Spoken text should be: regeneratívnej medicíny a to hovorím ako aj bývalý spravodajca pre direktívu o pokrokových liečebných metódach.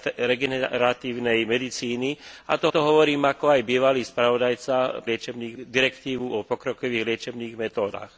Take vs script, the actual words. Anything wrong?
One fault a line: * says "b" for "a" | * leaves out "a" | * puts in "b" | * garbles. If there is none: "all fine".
* puts in "to"
* says "liečebných" for "pre"